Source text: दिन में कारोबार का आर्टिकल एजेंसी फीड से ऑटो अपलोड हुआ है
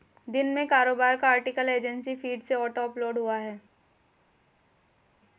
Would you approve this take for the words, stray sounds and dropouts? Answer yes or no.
yes